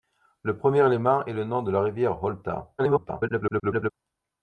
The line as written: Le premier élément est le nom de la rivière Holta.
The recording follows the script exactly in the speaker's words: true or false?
false